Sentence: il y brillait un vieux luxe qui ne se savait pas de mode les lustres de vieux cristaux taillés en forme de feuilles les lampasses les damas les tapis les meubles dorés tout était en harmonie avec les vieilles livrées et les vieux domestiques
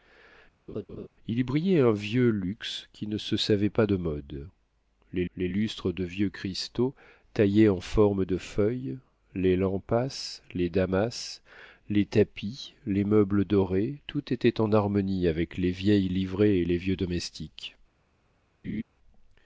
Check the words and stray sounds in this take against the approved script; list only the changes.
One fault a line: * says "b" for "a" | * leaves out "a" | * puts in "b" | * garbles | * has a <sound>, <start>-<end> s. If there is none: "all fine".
* has a laugh, 0.7-1.1 s
* puts in "les"
* has a laugh, 18.6-18.8 s